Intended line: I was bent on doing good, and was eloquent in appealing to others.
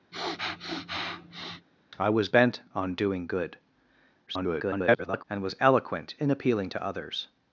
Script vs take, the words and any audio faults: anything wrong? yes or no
yes